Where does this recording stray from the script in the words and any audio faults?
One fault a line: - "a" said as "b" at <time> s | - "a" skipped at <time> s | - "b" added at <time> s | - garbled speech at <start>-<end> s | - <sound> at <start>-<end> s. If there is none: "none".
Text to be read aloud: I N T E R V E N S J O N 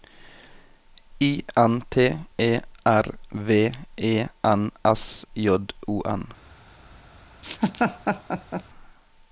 - laugh at 7.4-8.6 s